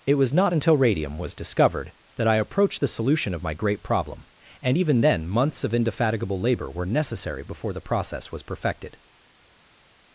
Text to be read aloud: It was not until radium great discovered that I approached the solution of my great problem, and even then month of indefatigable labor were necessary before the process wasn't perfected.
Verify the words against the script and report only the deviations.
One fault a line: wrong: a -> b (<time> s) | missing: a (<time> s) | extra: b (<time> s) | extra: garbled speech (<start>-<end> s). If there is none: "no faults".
wrong: great -> was (1.2 s)
wrong: month -> months (5.3 s)
wrong: wasn't -> was (8.3 s)